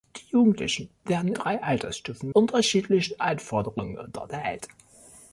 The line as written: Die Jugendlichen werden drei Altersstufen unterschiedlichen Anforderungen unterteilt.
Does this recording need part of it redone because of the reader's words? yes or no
no